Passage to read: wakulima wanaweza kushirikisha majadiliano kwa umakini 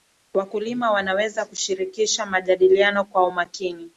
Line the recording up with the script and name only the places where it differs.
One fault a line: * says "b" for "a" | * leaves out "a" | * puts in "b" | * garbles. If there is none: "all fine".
all fine